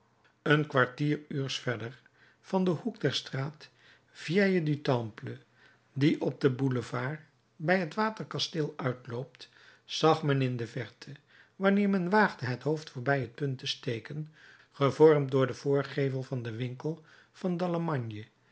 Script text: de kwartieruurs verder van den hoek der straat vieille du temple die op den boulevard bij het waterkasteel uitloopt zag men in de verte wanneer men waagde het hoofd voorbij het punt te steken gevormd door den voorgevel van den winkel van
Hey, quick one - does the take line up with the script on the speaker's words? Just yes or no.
no